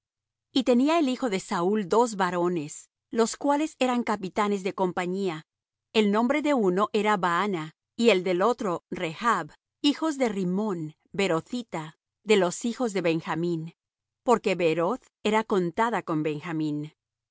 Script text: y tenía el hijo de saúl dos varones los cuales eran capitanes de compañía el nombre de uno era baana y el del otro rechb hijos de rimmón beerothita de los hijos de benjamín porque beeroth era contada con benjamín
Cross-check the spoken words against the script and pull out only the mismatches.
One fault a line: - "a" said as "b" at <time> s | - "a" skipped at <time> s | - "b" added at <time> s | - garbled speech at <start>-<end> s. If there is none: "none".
none